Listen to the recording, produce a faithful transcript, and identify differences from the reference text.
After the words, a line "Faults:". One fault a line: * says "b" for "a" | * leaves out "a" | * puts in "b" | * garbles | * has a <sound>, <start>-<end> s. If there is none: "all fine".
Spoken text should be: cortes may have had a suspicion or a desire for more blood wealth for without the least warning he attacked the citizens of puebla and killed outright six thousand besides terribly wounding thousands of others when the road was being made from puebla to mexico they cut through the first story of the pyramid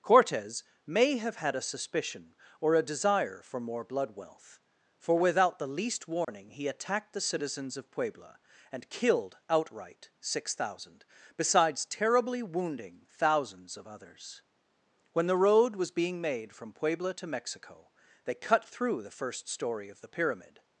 cortes may have had a suspicion or a desire for more blood wealth for without the least warning he attacked the citizens of puebla and killed outright six thousand besides terribly wounding thousands of others when the road was being made from puebla to mexico they cut through the first story of the pyramid
Faults:
* has a dropout, 6.2-6.3 s